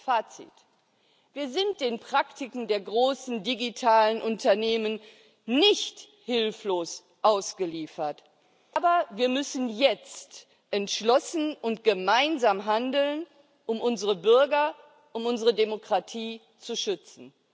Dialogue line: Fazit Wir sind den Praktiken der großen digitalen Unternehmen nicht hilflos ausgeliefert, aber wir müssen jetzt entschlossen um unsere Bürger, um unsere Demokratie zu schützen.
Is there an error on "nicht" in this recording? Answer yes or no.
no